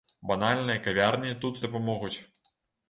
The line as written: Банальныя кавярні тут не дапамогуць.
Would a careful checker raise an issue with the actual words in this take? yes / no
yes